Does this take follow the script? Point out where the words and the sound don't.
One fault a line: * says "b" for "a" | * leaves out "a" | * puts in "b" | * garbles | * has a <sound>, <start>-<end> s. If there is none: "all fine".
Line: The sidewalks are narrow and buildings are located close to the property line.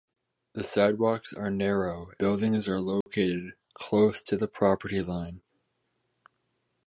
* leaves out "and"
* has a dropout, 3.0-3.1 s